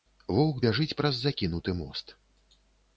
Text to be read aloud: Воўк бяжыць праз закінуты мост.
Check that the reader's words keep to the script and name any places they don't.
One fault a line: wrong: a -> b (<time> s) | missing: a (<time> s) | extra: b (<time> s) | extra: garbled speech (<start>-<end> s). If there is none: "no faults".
no faults